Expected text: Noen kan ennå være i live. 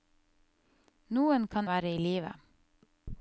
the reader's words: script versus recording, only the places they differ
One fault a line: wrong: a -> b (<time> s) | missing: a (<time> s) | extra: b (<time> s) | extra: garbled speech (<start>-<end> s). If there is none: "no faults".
missing: ennå (1.7 s)